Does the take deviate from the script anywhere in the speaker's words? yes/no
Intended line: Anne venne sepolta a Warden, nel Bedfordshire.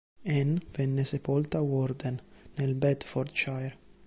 no